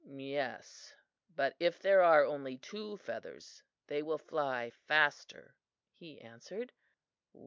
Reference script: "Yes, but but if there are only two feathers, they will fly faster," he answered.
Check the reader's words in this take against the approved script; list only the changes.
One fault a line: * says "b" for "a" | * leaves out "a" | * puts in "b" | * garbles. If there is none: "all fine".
* leaves out "but"